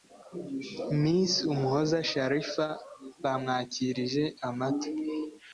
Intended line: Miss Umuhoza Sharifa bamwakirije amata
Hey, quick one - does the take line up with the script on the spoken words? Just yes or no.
yes